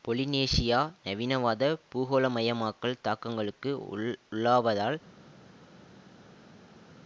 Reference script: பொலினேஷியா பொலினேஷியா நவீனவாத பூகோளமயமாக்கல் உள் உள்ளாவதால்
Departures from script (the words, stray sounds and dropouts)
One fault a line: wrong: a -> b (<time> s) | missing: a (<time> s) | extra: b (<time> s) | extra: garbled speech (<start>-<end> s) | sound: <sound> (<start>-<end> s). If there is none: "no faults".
missing: பொலினேஷியா (0.8 s)
extra: தாக்கங்களுக்கு (3.0 s)